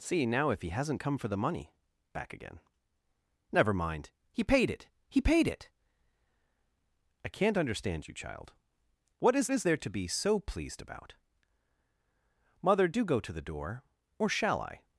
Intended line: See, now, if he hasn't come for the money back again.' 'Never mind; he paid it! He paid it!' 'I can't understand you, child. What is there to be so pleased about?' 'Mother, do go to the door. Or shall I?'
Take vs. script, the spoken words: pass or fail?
fail